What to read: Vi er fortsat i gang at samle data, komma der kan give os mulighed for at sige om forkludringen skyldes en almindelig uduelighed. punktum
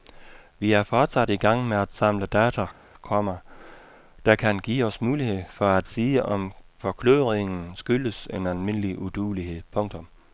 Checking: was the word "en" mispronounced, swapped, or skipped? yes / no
no